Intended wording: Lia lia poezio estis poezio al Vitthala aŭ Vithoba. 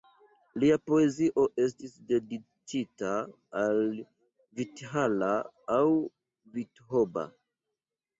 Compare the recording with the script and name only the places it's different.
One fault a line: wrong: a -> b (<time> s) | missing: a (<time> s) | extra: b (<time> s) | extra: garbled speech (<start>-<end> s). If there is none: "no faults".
missing: lia (0.8 s)
wrong: poezio -> dediĉita (2.1 s)